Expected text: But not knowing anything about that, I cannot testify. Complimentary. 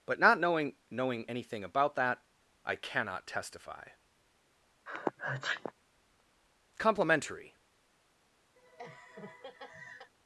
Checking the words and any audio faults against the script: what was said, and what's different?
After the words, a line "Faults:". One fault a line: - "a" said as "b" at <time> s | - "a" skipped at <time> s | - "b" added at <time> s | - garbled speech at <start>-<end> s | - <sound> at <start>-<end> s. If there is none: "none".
But not knowing knowing anything about that, I cannot testify. Complimentary.
Faults:
- "knowing" added at 0.9 s
- sneeze at 4.9-5.7 s
- laugh at 8.6-10.1 s